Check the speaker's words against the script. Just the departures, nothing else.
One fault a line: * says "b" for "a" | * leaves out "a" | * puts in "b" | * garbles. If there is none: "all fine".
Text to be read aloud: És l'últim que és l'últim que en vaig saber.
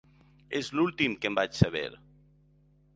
* leaves out "és l'últim que"